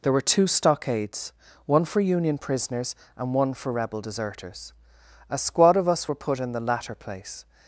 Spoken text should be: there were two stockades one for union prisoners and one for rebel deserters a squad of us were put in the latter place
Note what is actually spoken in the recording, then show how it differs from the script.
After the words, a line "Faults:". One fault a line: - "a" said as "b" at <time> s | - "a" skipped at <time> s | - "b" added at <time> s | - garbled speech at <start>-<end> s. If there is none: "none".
there were two stockades one for union prisoners and one for rebel deserters a squad of us were put in the latter place
Faults:
none